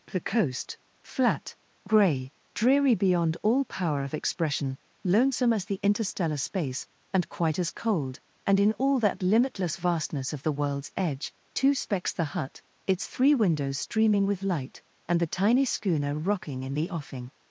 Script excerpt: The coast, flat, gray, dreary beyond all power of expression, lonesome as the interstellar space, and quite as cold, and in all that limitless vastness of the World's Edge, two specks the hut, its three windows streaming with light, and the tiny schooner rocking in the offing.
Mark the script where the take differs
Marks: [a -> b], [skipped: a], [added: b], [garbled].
The coast, flat, gray, dreary beyond all power of expression, lonesome as the interstellar space, and quite as cold, and in all that limitless vastness of the World's Edge, two specks the hut, its three windows streaming with light, and the tiny schooner rocking in the offing.